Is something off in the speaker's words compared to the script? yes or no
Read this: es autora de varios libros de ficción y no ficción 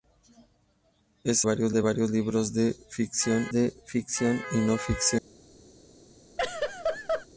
yes